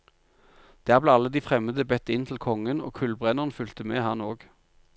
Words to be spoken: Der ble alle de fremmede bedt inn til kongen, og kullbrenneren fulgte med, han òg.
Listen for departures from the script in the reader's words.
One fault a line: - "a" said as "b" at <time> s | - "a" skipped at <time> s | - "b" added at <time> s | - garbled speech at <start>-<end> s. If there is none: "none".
none